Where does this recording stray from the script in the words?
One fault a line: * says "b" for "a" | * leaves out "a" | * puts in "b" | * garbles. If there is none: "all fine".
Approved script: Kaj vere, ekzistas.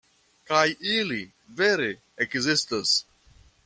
* puts in "ili"